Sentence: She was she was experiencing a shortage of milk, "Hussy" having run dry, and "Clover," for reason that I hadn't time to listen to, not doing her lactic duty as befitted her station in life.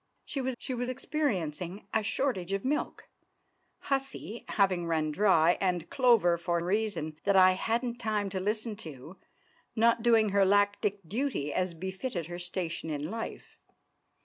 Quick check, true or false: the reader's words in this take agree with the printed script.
true